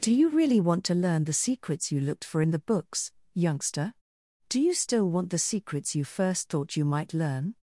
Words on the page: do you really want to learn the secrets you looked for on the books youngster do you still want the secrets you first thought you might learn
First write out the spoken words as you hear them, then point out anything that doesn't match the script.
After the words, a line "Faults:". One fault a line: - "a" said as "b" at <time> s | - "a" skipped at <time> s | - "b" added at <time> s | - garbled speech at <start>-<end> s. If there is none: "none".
do you really want to learn the secrets you looked for in the books youngster do you still want the secrets you first thought you might learn
Faults:
- "on" said as "in" at 2.4 s